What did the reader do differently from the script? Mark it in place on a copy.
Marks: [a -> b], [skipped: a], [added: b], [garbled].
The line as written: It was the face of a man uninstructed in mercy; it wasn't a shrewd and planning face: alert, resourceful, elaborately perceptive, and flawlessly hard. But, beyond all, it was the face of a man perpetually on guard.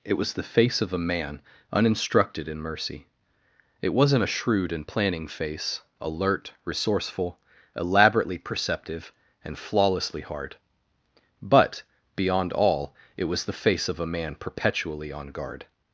It was the face of a man uninstructed in mercy; it wasn't a shrewd and planning face: alert, resourceful, elaborately perceptive, and flawlessly hard. But, beyond all, it was the face of a man perpetually on guard.